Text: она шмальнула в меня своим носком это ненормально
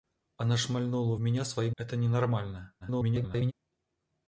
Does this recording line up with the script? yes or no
no